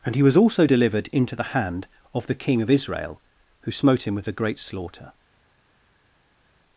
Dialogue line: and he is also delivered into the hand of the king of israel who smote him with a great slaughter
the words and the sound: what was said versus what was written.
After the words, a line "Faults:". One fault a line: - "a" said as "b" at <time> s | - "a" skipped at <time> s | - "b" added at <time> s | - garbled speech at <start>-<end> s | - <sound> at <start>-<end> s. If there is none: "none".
and he was also delivered into the hand of the king of israel who smote him with a great slaughter
Faults:
- "is" said as "was" at 0.2 s